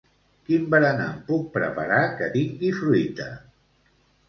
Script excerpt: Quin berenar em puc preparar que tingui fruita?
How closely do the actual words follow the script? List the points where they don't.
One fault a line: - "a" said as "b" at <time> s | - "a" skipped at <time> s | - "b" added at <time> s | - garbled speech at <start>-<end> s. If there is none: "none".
none